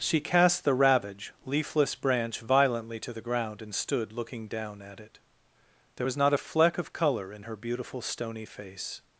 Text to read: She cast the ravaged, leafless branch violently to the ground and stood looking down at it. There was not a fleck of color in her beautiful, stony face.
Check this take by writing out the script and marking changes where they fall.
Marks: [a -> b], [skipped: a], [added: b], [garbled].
She cast the [ravaged, -> ravage] leafless branch violently to the ground and stood looking down at it. There was not a fleck of color in her beautiful, stony face.